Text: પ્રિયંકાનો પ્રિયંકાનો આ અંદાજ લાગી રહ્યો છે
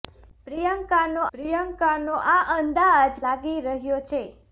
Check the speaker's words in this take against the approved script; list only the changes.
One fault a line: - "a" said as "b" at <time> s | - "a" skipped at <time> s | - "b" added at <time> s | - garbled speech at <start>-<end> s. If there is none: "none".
none